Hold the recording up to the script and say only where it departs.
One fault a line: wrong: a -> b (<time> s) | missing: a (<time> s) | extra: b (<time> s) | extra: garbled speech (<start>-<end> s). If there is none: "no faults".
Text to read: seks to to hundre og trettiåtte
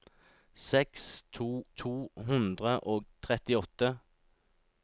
no faults